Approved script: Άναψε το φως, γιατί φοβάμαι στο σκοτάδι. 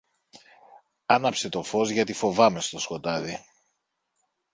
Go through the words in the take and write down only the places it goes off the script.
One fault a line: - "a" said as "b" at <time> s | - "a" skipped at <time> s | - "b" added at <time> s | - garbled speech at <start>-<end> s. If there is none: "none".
none